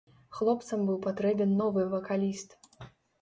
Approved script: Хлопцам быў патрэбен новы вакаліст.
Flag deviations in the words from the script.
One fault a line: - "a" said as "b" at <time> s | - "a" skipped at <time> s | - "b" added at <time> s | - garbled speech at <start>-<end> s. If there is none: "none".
none